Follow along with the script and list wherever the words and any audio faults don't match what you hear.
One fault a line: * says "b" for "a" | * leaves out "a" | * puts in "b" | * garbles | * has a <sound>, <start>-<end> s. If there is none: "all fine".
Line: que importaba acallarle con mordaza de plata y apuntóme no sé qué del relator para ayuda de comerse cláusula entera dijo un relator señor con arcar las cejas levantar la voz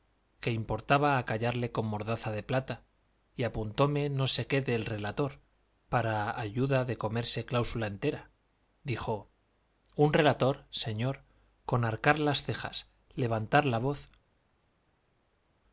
all fine